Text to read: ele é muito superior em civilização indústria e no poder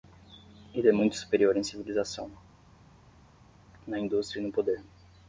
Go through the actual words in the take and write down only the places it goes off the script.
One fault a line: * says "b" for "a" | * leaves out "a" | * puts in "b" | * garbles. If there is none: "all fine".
* puts in "na"